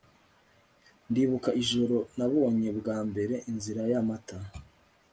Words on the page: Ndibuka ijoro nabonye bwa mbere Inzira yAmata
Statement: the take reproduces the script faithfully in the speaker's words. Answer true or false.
true